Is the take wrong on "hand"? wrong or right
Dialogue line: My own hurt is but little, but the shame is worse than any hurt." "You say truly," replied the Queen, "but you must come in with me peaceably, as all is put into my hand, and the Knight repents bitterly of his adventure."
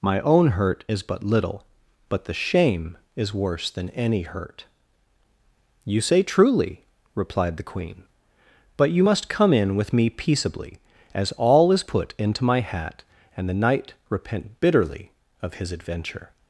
wrong